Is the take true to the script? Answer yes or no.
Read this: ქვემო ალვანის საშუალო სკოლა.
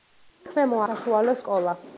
no